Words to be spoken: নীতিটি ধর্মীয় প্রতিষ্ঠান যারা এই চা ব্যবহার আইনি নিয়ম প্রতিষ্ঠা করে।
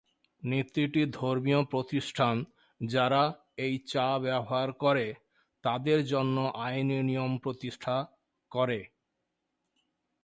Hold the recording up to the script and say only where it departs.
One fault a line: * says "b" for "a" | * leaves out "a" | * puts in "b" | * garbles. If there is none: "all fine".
* puts in "করে তাদের জন্য"